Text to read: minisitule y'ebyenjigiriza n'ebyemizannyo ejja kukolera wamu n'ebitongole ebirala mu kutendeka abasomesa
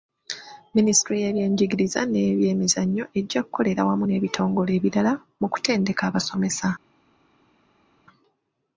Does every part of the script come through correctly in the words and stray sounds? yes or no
yes